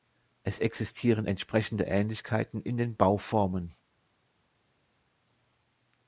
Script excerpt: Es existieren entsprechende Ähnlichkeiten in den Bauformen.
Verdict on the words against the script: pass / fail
pass